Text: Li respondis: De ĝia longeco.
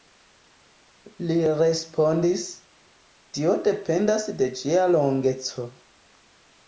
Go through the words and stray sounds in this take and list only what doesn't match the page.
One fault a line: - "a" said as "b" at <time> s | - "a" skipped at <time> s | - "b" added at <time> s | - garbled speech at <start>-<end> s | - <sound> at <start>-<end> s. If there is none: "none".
- "Tio dependas" added at 3.4 s